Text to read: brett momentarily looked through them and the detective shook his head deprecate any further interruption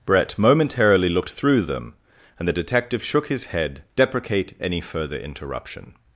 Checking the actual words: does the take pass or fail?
pass